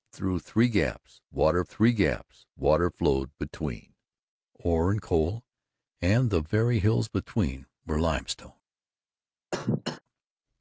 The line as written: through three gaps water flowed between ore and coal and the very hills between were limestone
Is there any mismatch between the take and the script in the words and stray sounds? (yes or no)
yes